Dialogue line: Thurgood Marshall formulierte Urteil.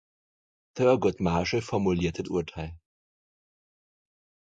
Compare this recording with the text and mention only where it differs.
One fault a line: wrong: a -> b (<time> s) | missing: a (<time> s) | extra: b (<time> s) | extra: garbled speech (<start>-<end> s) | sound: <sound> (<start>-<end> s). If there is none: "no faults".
no faults